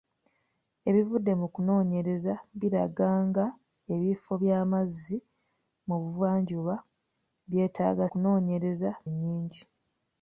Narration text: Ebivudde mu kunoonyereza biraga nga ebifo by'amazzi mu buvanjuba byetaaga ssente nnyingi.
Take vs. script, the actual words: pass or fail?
fail